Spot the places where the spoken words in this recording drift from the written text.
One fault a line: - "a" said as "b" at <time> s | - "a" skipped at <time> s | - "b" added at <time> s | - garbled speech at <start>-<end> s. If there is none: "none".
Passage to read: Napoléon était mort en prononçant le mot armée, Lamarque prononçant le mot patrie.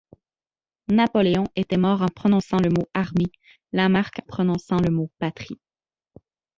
none